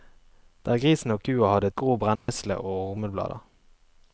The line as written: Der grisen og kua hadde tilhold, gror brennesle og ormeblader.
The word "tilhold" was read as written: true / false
false